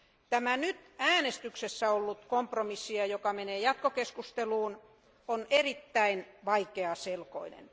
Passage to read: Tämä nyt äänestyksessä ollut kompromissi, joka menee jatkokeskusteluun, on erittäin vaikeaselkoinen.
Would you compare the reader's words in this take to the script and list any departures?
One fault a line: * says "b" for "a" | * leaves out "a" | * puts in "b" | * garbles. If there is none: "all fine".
all fine